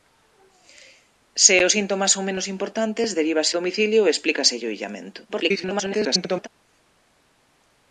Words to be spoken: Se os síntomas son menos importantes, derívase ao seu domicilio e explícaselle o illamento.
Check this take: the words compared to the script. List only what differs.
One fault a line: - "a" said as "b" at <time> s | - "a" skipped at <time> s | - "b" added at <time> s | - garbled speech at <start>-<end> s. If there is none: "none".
- "ao seu" skipped at 3.5 s
- garbled speech at 5.3-6.5 s